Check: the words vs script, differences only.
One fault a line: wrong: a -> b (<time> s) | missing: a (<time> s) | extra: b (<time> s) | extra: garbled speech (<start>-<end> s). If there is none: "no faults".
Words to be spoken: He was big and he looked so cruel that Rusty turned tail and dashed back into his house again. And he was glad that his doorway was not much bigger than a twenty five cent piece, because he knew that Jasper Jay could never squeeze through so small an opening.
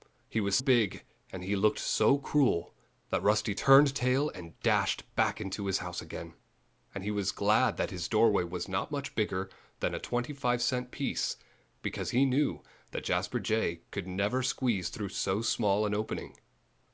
no faults